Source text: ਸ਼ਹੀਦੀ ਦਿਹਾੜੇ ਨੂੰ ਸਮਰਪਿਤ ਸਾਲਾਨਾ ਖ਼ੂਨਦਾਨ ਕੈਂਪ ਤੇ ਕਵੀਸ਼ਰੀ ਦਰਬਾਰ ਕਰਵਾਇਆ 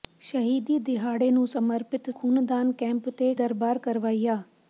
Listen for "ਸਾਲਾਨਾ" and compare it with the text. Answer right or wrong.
wrong